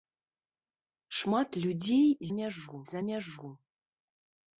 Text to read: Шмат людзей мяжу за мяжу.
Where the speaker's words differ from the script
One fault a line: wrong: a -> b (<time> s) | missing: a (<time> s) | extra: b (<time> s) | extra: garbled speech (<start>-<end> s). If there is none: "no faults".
no faults